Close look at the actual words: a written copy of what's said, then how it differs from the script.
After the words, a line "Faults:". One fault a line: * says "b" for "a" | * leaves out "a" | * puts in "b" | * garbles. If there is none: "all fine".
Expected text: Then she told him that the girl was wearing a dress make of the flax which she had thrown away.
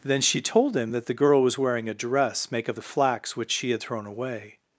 Then she told him that the girl was wearing a dress make of the flax which she had thrown away.
Faults:
all fine